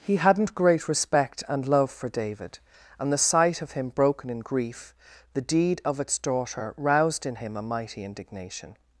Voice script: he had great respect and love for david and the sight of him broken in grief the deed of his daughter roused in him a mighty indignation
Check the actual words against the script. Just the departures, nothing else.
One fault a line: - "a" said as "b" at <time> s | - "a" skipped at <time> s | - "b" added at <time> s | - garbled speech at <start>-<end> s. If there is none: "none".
- "had" said as "hadn't" at 0.1 s
- "his" said as "its" at 6.0 s